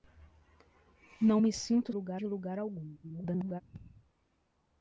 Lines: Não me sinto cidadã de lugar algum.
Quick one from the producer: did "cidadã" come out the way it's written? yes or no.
no